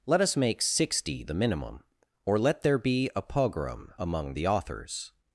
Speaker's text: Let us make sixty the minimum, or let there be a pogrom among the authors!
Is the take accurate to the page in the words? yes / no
yes